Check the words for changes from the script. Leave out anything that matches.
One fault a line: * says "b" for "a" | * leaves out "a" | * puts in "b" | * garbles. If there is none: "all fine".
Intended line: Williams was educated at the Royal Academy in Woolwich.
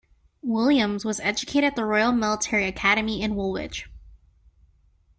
* puts in "Military"